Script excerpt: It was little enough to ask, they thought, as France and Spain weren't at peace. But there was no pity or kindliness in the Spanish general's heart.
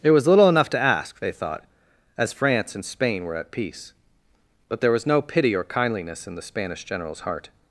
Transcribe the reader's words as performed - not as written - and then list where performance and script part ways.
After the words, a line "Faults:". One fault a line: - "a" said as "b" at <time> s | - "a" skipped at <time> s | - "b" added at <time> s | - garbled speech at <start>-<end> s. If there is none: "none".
It was little enough to ask, they thought, as France and Spain were at peace. But there was no pity or kindliness in the Spanish general's heart.
Faults:
- "weren't" said as "were" at 3.2 s